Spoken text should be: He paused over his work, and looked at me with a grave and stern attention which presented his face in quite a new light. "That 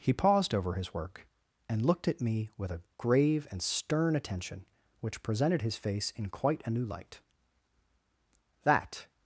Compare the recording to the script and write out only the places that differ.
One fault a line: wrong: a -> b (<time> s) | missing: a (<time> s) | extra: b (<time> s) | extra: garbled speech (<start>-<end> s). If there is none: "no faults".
no faults